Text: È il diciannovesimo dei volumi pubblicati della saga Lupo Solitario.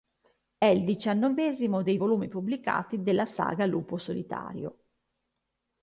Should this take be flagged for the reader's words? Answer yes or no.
no